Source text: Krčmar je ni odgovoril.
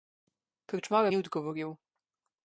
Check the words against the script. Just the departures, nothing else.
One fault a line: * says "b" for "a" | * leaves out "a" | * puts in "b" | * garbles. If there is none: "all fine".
all fine